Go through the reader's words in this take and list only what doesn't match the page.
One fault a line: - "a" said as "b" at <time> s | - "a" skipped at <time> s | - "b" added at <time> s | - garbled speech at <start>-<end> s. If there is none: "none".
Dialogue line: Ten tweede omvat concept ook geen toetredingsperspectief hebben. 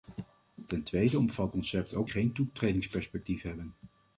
none